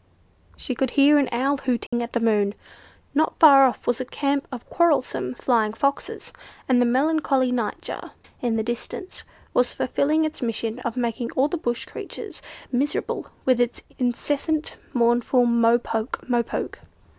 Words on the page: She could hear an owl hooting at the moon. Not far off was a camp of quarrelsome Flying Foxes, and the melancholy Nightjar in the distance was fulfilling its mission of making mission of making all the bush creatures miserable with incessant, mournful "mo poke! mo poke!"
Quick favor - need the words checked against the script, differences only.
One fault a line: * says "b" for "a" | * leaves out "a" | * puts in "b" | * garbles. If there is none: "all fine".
* leaves out "mission of making"
* puts in "its"